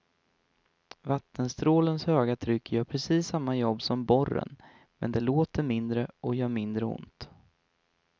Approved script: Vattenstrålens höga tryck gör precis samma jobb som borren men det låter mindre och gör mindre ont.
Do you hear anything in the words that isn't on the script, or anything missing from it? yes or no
no